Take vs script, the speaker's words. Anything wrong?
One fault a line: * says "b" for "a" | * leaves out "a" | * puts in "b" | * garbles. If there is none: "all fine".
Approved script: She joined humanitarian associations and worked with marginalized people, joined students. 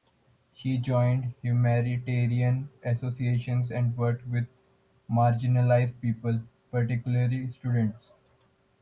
* says "particularly" for "joined"